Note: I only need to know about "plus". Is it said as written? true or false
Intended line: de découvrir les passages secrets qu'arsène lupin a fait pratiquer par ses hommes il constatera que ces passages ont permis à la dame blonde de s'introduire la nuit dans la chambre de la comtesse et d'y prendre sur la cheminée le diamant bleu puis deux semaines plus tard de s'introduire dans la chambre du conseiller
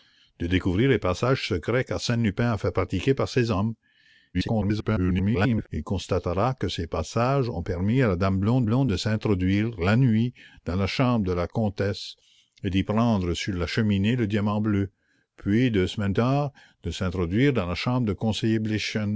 false